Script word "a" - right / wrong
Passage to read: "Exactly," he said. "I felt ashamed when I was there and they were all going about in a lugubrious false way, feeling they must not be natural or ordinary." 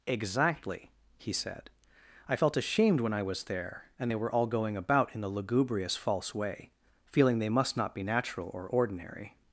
wrong